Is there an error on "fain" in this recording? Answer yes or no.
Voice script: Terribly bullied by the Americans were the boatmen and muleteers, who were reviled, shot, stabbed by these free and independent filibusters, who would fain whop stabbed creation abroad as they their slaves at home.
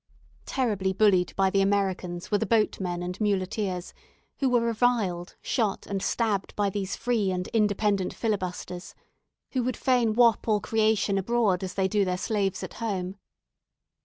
no